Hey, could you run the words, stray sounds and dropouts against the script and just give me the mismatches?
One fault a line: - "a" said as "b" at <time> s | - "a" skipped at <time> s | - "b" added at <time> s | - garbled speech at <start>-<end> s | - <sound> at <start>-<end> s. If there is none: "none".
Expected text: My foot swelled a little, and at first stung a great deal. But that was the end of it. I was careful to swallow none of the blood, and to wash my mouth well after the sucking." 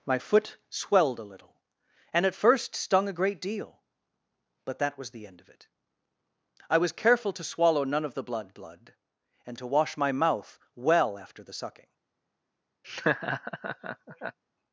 - "blood" added at 8.5 s
- laugh at 12.8-14.4 s